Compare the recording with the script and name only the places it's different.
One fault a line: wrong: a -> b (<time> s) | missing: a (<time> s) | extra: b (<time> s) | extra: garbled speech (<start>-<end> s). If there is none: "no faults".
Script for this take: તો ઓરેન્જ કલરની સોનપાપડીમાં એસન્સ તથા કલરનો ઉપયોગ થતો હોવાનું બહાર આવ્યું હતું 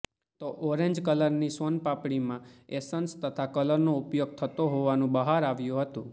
no faults